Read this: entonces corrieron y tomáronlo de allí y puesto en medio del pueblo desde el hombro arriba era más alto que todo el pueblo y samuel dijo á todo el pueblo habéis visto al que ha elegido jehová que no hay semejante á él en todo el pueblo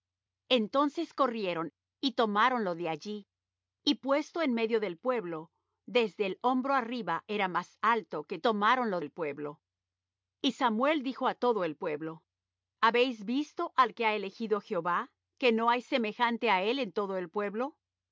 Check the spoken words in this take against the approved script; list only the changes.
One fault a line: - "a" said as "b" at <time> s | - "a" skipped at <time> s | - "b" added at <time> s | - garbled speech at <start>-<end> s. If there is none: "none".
- "todo" said as "tomáronlo" at 8.4 s